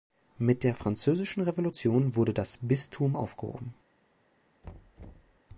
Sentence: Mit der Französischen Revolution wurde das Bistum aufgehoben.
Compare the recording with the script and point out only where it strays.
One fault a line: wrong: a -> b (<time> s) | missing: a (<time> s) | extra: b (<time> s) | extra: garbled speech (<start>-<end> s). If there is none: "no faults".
no faults